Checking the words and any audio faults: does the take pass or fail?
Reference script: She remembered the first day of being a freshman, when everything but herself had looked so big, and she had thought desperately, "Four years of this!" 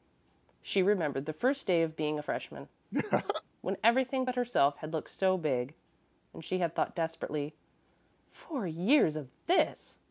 fail